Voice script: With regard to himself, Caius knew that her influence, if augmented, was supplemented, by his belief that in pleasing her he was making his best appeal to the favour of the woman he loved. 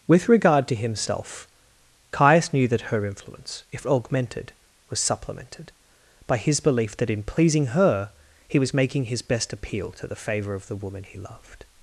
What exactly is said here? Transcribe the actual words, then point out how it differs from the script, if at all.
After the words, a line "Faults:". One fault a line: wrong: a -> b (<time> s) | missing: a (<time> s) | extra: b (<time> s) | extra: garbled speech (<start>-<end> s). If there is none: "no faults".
With regard to himself, Caius knew that her influence, if augmented, was supplemented, by his belief that in pleasing her he was making his best appeal to the favour of the woman he loved.
Faults:
no faults